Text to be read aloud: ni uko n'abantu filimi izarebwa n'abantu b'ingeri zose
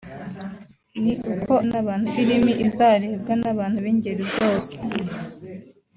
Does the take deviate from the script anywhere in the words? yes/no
no